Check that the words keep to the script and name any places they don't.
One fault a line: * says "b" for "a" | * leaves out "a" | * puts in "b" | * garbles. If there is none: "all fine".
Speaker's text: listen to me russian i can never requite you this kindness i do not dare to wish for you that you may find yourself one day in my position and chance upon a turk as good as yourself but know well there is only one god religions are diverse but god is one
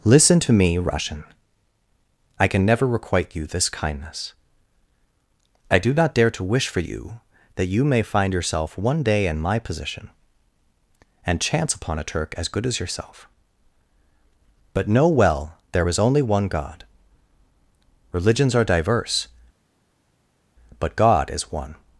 all fine